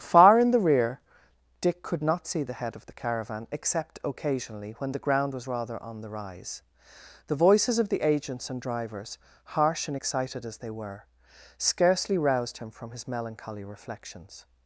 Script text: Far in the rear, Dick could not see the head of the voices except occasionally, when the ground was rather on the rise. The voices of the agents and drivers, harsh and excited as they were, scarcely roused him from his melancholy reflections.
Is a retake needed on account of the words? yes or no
yes